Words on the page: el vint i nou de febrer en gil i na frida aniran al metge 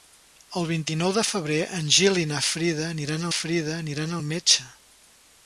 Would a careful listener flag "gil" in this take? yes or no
no